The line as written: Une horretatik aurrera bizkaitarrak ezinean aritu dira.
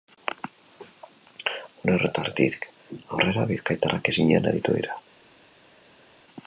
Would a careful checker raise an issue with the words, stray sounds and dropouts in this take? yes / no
no